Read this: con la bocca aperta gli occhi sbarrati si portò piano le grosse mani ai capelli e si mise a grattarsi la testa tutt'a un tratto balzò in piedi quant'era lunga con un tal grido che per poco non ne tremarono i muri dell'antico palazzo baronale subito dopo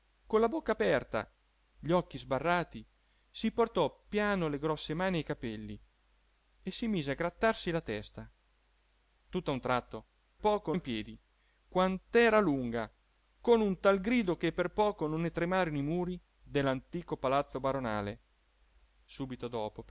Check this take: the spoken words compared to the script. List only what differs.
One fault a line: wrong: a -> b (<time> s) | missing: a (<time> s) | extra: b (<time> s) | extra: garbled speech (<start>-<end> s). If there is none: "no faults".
wrong: balzò -> poco (10.4 s)